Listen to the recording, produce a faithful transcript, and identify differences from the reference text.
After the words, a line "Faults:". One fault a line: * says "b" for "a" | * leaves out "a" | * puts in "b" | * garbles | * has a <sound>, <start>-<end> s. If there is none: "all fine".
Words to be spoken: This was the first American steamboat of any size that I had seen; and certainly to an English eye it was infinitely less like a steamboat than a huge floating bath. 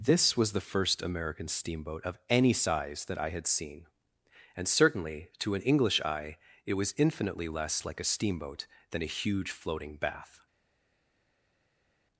This was the first American steamboat of any size that I had seen; and certainly to an English eye it was infinitely less like a steamboat than a huge floating bath.
Faults:
all fine